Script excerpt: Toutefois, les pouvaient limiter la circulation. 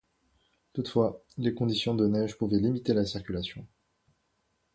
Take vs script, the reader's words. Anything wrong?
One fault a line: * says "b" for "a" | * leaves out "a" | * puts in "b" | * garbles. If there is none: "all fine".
* puts in "conditions de neige"